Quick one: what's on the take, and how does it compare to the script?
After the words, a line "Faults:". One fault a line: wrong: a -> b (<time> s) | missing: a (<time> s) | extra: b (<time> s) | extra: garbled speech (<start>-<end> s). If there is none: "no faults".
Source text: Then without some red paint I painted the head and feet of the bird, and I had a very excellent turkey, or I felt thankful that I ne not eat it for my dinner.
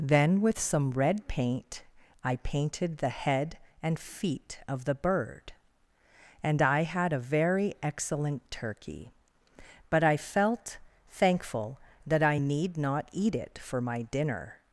Then with some red paint I painted the head and feet of the bird, and I had a very excellent turkey, but I felt thankful that I need not eat it for my dinner.
Faults:
wrong: without -> with (0.4 s)
wrong: or -> but (9.9 s)
wrong: ne -> need (12.4 s)